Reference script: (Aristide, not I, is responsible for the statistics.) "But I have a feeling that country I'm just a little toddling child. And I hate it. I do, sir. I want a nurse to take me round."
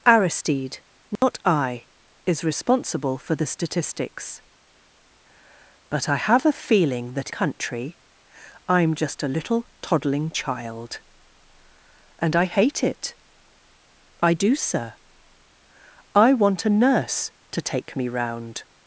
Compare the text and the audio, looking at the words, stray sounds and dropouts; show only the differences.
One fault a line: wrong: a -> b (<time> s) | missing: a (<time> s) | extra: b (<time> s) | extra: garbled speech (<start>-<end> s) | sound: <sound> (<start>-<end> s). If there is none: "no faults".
sound: dropout (1.2-1.2 s)